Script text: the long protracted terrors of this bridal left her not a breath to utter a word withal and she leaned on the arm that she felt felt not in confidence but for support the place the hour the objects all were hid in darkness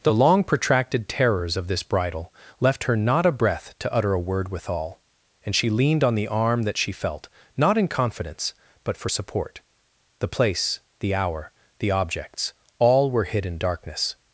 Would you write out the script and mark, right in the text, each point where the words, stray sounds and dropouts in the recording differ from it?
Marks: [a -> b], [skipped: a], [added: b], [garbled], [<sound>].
the long protracted terrors of this bridal left her not a breath to utter a word withal and she leaned on the arm that she felt [skipped: felt] not in confidence but for support the place the hour the objects all were hid in darkness